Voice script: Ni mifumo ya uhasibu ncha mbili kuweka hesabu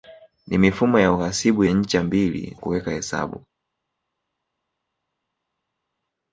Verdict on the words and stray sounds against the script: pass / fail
pass